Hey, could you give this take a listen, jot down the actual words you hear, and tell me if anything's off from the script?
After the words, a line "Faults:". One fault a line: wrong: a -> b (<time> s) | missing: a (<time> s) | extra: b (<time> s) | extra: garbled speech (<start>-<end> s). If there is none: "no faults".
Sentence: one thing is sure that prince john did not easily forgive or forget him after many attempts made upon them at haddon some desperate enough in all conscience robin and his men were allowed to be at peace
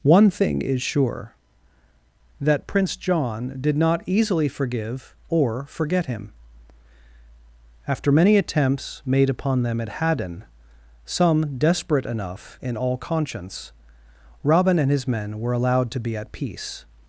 one thing is sure that prince john did not easily forgive or forget him after many attempts made upon them at haddon some desperate enough in all conscience robin and his men were allowed to be at peace
Faults:
no faults